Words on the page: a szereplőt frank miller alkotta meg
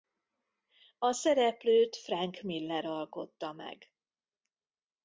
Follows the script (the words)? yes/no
yes